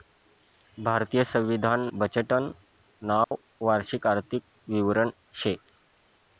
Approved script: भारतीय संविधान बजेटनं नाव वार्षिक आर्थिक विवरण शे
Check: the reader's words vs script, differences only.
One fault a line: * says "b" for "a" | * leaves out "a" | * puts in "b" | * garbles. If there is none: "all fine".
all fine